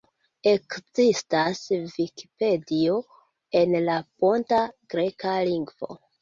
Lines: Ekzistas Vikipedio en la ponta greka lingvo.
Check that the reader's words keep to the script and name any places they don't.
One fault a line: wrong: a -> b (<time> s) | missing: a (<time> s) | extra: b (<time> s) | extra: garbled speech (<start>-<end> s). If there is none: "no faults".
no faults